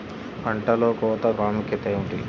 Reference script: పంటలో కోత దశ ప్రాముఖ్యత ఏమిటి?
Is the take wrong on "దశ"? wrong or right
wrong